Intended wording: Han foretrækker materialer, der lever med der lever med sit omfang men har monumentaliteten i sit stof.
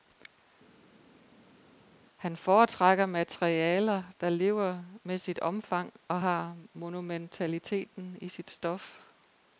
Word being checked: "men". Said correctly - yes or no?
no